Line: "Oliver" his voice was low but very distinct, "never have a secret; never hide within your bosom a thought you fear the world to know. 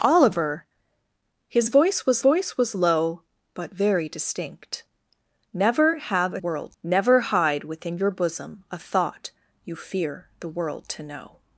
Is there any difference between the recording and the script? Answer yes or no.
yes